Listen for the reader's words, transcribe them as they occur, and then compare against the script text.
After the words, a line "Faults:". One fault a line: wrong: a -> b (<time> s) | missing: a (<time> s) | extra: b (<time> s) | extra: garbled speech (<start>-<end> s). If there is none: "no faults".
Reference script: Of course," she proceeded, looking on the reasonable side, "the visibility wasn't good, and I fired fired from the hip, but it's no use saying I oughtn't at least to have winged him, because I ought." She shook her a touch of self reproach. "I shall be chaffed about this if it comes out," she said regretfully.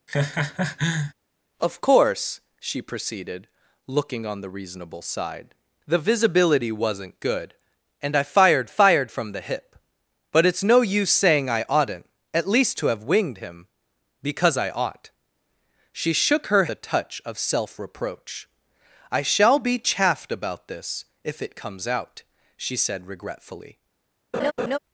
Of course," she proceeded, looking on the reasonable side, "the visibility wasn't good, and I fired fired from the hip, but it's no use saying I oughtn't at least to have winged him, because I ought." She shook her a touch of self reproach. "I shall be chaffed about this if it comes out," she said regretfully.
Faults:
no faults